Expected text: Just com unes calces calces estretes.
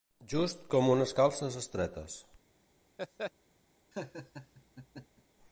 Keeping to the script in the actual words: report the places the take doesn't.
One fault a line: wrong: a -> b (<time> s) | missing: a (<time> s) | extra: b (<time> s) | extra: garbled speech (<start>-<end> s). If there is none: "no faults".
missing: calces (1.6 s)